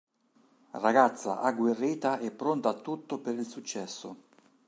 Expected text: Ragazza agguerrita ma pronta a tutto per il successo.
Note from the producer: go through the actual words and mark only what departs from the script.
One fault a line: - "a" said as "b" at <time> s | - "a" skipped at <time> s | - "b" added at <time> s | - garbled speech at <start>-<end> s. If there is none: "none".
- "ma" said as "e" at 2.2 s